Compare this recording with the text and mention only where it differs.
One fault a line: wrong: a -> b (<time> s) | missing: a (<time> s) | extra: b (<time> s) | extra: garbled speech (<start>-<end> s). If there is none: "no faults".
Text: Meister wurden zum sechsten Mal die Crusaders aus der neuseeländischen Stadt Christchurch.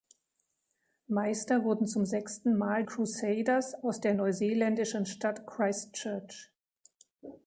missing: die (2.8 s)